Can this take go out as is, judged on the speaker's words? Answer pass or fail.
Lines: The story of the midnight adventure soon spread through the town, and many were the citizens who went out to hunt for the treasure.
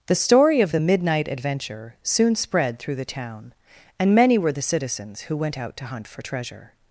fail